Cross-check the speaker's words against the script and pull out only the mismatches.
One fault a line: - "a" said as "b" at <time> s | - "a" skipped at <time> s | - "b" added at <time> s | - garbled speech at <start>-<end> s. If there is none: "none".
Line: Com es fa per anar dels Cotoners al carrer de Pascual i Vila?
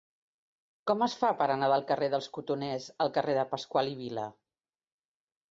- "del carrer" added at 1.7 s